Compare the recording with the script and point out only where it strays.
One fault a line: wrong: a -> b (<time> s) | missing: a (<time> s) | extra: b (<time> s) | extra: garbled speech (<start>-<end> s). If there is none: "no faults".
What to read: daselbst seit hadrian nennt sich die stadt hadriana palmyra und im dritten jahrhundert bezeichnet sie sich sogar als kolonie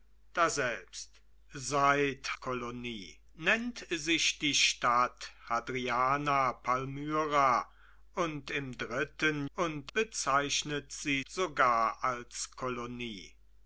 wrong: hadrian -> kolonie (2.3 s)
wrong: jahrhundert -> und (9.5 s)
missing: sich (11.2 s)